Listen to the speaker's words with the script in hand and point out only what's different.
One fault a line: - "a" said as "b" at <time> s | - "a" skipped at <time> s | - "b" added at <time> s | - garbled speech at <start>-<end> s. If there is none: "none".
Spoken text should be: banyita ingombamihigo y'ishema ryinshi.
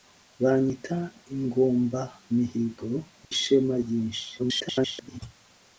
- garbled speech at 4.4-5.2 s